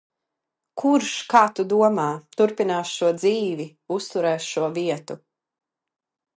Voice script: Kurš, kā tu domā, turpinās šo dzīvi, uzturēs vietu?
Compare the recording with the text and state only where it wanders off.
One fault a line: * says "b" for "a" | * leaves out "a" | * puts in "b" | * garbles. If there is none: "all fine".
* puts in "šo"